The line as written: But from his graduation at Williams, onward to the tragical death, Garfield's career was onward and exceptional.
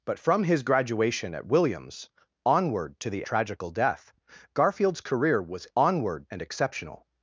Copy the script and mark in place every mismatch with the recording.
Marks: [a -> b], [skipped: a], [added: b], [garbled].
But from his graduation at Williams, onward to the tragical death, Garfield's career was onward and exceptional.